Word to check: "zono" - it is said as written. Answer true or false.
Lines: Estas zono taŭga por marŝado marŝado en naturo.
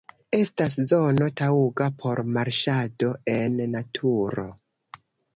true